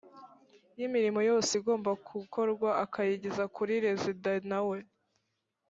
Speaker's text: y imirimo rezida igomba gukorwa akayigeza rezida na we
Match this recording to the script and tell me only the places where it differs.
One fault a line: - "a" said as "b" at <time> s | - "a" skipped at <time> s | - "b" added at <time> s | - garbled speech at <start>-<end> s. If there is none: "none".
- "rezida" said as "yose" at 1.3 s
- "kuri" added at 3.6 s